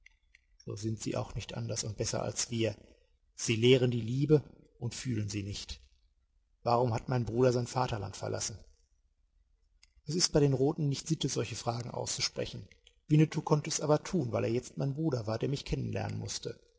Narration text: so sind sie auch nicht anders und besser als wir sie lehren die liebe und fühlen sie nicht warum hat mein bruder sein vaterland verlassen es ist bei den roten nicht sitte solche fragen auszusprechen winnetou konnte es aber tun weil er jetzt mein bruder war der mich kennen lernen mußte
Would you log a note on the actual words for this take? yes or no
no